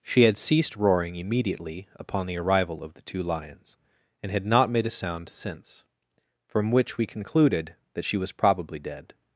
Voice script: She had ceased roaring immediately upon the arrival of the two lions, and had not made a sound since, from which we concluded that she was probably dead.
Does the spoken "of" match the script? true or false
true